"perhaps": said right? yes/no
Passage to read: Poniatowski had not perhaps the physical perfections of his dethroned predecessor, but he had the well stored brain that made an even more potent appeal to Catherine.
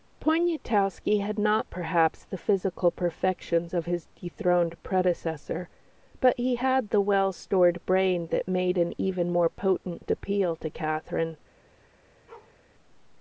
yes